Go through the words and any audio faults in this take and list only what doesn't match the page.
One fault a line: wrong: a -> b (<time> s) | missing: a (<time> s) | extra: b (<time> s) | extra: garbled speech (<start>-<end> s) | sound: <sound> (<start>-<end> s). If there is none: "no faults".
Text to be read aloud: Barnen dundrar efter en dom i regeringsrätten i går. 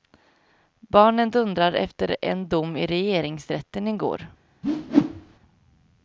sound: whoosh (4.6-5.4 s)